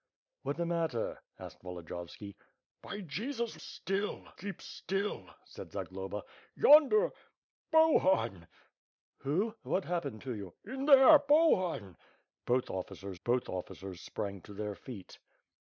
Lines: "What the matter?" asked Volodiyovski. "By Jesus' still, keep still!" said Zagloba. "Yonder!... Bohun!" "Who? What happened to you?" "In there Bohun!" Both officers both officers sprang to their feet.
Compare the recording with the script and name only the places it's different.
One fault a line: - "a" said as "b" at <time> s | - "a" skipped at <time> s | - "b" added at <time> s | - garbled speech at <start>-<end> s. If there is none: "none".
none